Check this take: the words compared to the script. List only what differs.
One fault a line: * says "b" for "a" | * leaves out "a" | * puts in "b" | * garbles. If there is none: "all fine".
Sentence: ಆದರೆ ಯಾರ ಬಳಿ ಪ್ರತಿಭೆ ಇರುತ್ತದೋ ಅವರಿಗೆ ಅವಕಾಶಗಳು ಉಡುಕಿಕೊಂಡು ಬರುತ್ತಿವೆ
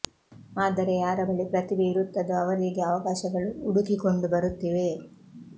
all fine